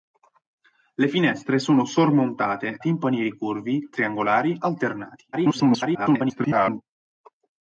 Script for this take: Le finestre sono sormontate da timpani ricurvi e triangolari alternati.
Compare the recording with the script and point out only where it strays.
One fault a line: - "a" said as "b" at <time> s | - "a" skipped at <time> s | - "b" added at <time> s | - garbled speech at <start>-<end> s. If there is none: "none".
- "da" skipped at 2.8 s
- "e" skipped at 3.9 s
- garbled speech at 5.3-6.8 s